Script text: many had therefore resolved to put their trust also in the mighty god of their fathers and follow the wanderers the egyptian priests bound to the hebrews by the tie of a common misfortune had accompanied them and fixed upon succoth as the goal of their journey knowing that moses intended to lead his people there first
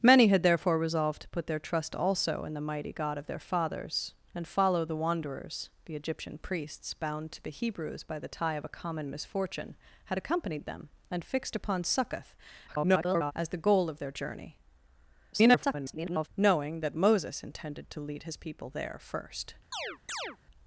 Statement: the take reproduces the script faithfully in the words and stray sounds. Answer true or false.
false